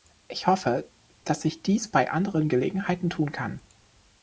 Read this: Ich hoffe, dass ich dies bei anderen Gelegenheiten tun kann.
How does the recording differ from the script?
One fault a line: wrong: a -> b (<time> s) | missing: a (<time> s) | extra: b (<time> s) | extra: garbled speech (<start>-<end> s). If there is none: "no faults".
no faults